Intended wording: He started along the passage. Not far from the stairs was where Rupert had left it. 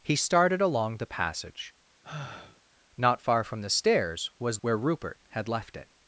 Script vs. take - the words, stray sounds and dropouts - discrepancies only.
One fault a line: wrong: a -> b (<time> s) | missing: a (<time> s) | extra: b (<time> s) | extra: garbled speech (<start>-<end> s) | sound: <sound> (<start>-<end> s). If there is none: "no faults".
sound: sigh (2.0-2.6 s)